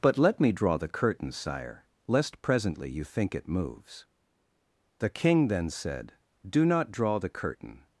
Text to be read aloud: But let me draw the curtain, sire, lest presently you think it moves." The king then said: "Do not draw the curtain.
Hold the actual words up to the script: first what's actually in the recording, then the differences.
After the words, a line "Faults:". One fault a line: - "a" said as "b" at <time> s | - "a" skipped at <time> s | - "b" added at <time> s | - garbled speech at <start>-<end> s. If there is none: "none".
But let me draw the curtain, sire, lest presently you think it moves." The king then said: "Do not draw the curtain.
Faults:
none